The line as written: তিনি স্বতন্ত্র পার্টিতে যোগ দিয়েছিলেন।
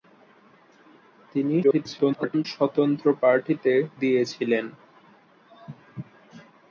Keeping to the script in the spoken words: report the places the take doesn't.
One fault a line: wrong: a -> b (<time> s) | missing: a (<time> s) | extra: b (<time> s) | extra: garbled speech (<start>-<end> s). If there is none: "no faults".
extra: garbled speech (1.6-2.5 s)
missing: যোগ (3.7 s)